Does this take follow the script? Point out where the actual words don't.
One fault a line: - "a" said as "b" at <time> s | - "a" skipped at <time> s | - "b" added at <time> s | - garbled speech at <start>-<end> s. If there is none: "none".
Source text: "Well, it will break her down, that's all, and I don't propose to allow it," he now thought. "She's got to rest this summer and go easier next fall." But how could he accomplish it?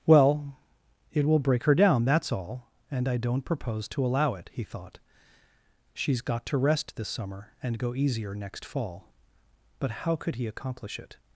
- "now" skipped at 4.6 s